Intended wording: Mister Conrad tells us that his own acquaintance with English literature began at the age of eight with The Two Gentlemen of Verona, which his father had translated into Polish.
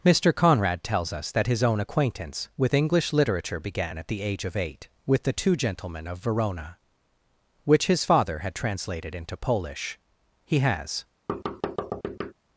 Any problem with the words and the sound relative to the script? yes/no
yes